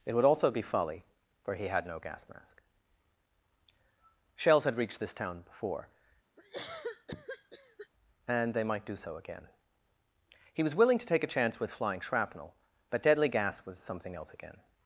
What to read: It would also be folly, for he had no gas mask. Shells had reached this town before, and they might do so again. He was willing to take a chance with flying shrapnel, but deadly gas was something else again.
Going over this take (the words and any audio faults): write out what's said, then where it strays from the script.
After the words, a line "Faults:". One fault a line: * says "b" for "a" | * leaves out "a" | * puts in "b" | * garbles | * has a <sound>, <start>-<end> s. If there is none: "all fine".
It would also be folly, for he had no gas mask. Shells had reached this town before, and they might do so again. He was willing to take a chance with flying shrapnel, but deadly gas was something else again.
Faults:
* has a cough, 6.4-7.9 s